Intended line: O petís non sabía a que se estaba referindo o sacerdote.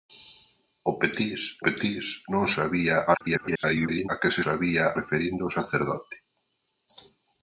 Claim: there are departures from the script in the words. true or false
true